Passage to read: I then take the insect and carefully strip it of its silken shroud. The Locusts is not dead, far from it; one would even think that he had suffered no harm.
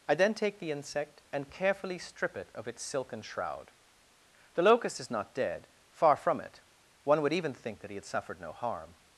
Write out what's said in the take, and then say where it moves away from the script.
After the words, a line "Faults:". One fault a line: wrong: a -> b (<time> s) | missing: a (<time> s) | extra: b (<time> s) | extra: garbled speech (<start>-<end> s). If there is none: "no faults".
I then take the insect and carefully strip it of its silken shroud. The Locust is not dead, far from it; one would even think that he had suffered no harm.
Faults:
wrong: Locusts -> Locust (4.6 s)